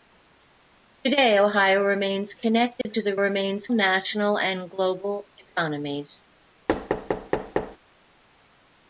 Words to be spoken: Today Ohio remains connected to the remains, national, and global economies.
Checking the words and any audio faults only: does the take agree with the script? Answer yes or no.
no